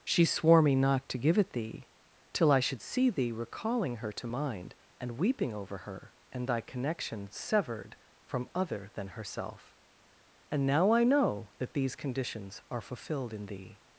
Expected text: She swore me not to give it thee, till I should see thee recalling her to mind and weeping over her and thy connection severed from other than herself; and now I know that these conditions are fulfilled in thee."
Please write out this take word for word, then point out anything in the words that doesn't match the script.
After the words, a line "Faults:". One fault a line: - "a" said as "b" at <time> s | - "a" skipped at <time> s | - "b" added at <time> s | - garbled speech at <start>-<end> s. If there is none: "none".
She swore me not to give it thee, till I should see thee recalling her to mind and weeping over her and thy connection severed from other than herself; and now I know that these conditions are fulfilled in thee."
Faults:
none